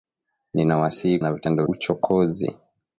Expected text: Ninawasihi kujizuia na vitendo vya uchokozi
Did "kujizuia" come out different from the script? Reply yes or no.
yes